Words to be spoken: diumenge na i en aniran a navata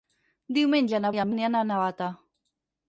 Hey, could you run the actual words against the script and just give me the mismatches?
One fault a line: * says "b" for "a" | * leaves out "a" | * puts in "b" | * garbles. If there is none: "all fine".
all fine